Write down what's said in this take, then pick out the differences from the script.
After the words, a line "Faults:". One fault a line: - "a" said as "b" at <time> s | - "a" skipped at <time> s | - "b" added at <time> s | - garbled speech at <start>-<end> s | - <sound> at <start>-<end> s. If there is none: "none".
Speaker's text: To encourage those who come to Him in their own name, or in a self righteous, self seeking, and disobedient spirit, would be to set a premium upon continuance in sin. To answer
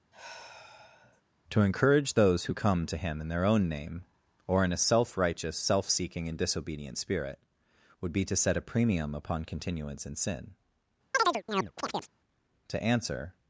To encourage those who come to Him in their own name, or in a self righteous, self seeking, and disobedient spirit, would be to set a premium upon continuance in sin. To answer
Faults:
- sigh at 0.1-1.2 s
- chirp at 11.1-12.1 s